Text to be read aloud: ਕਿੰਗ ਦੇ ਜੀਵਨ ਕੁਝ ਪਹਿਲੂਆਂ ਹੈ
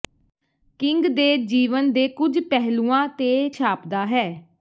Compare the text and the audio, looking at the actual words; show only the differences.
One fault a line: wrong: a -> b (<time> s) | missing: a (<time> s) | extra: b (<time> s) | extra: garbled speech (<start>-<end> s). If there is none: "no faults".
extra: ਦੇ (1.9 s)
extra: ਤੇ ਛਾਪਦਾ (3.2 s)